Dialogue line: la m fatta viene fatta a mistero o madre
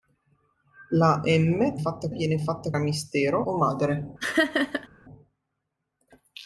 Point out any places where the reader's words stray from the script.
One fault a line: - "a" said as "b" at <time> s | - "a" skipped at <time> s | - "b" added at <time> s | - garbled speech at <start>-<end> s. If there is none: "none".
none